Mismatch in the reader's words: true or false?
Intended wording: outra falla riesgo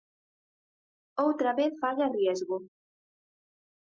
true